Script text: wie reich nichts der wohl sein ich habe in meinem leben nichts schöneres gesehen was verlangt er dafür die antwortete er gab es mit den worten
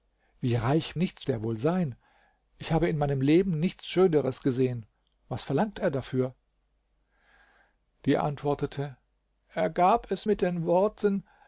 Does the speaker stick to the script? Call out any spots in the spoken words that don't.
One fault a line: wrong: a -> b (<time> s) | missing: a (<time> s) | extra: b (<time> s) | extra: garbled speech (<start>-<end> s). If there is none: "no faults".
no faults